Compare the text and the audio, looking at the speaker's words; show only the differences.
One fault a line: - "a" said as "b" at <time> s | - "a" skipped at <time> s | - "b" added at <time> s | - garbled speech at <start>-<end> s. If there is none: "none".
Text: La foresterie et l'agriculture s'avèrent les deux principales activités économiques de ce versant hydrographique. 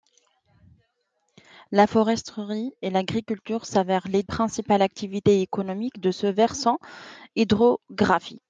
- "deux" skipped at 4.2 s